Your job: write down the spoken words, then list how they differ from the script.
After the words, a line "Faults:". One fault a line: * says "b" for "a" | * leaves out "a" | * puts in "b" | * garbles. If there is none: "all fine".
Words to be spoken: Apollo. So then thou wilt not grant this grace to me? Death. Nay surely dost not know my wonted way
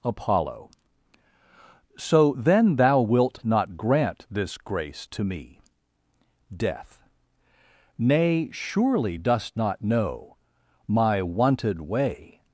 Apollo. So then thou wilt not grant this grace to me? Death. Nay surely dost not know my wonted way
Faults:
all fine